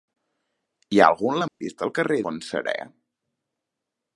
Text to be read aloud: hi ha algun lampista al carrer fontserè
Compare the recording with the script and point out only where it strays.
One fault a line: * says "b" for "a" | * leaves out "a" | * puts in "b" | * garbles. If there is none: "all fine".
all fine